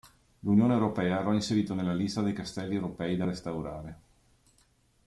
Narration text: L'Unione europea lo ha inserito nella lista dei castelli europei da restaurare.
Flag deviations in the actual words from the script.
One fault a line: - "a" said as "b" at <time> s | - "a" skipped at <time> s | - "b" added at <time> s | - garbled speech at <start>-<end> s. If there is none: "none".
none